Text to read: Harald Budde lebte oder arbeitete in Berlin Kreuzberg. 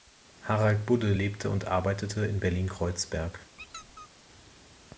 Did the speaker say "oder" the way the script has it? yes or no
no